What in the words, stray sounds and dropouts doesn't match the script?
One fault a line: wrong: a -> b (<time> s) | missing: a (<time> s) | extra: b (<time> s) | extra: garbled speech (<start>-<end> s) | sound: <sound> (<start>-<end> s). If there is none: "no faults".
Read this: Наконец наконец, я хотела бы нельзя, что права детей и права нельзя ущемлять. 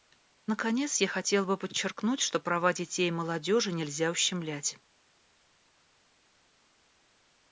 missing: наконец (1.0 s)
wrong: нельзя -> подчеркнуть (1.6 s)
wrong: права -> молодежи (3.1 s)